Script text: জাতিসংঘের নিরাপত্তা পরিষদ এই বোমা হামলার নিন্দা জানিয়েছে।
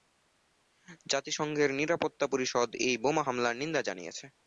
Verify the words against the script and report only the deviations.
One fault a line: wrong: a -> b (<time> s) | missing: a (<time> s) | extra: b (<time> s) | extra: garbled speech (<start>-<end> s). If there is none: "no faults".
no faults